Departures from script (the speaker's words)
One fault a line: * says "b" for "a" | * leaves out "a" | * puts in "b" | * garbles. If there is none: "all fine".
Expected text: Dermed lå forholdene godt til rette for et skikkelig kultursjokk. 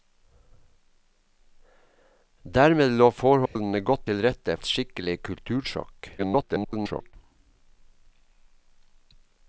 * leaves out "for"
* garbles